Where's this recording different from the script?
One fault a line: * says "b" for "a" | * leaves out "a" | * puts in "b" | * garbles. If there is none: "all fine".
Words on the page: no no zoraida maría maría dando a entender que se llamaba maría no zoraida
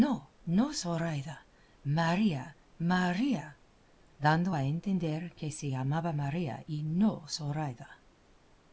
* puts in "y"